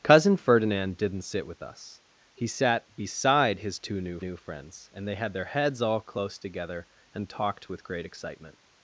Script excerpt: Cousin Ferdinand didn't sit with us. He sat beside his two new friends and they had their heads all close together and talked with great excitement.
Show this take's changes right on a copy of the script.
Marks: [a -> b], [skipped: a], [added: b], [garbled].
Cousin Ferdinand didn't sit with us. He sat beside his two new [added: new] friends and they had their heads all close together and talked with great excitement.